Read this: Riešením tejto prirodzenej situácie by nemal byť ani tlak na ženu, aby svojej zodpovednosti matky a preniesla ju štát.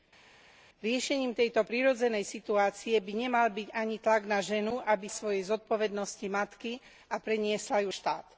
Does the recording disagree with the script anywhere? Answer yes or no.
no